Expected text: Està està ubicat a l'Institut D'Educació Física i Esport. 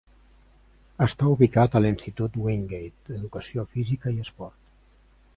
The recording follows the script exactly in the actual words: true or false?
false